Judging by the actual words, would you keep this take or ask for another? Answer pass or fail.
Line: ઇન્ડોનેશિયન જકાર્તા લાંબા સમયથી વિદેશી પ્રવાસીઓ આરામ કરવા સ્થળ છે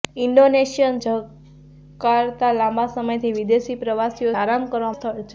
pass